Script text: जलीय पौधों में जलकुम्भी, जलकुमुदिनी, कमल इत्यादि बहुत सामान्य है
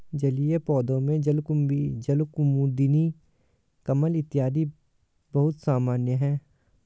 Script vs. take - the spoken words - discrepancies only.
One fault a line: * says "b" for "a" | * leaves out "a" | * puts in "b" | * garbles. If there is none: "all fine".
all fine